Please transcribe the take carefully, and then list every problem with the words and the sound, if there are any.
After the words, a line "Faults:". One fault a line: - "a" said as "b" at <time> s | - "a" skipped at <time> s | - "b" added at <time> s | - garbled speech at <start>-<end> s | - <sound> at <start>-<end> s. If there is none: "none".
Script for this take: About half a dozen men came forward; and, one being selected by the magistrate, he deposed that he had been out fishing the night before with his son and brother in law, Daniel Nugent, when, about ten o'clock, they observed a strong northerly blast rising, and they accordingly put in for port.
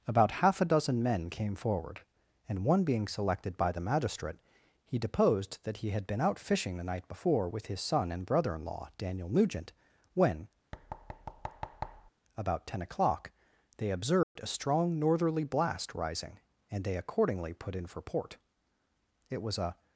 About half a dozen men came forward; and, one being selected by the magistrate, he deposed that he had been out fishing the night before with his son and brother in law, Daniel Nugent, when, about ten o'clock, they observed a strong northerly blast rising, and they accordingly put in for port. It was a
Faults:
- thud at 10.7-12.1 s
- dropout at 14.2-14.4 s
- "It was a" added at 19.3 s